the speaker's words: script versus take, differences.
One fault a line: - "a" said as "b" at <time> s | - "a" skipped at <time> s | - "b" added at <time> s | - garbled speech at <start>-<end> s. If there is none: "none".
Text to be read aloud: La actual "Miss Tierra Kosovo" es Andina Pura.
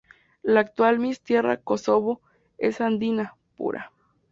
none